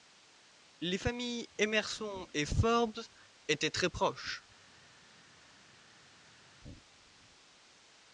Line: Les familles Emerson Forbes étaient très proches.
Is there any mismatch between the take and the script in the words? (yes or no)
yes